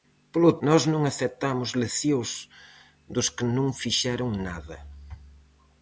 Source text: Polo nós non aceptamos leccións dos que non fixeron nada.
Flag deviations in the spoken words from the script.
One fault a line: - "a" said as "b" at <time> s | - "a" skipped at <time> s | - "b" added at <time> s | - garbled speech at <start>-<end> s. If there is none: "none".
none